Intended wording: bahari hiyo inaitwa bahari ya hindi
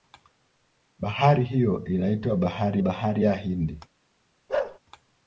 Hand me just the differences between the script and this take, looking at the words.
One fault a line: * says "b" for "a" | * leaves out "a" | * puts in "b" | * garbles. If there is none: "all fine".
* puts in "bahari"